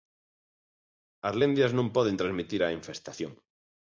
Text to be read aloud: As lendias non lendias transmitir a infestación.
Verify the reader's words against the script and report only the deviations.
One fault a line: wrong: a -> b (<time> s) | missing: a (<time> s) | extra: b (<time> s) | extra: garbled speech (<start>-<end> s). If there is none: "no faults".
wrong: lendias -> poden (2.0 s)